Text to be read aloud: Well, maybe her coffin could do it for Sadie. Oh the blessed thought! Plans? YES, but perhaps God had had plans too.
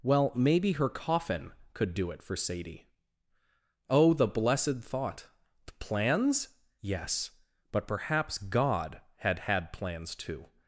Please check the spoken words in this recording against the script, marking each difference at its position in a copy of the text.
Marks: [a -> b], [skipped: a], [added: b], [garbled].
Well, maybe her coffin could do it for Sadie. Oh the blessed thought! Plans? YES, but perhaps God had had plans too.